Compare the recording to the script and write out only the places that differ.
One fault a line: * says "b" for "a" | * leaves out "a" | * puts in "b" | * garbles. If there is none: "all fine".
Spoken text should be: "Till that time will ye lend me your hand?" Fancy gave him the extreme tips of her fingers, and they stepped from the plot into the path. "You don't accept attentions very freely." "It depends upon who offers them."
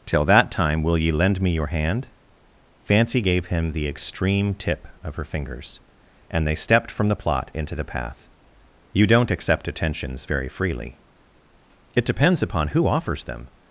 * says "tip" for "tips"